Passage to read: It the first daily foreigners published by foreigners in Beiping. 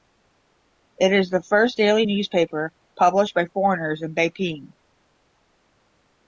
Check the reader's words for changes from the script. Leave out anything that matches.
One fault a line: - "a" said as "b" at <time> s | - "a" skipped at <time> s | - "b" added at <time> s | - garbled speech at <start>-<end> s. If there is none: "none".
- "is" added at 1.1 s
- "foreigners" said as "newspaper" at 2.0 s